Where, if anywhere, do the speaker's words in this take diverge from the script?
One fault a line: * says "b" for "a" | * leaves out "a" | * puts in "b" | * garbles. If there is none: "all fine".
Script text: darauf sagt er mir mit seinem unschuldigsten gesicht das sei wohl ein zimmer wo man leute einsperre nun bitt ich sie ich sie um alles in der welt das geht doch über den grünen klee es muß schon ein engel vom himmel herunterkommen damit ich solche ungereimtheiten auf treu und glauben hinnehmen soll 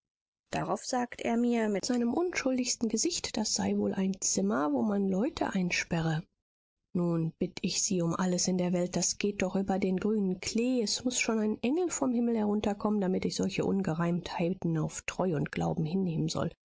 * leaves out "ich sie"